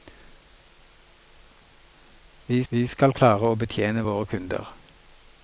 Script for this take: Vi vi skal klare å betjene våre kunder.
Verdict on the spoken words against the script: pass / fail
pass